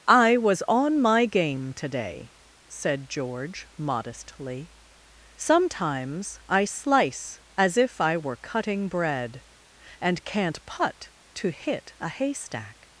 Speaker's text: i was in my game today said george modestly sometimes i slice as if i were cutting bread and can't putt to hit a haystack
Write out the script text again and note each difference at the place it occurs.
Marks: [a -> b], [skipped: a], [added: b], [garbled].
i was [in -> on] my game today said george modestly sometimes i slice as if i were cutting bread and can't putt to hit a haystack